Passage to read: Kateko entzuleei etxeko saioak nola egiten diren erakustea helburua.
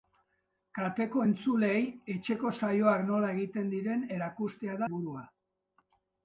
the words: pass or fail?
pass